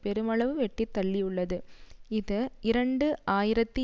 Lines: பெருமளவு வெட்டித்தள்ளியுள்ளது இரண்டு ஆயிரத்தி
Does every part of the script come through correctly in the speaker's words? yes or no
no